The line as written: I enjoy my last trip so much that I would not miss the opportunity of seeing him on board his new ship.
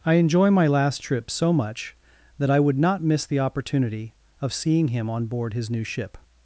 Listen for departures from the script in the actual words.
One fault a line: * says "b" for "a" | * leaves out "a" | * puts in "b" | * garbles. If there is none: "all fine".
all fine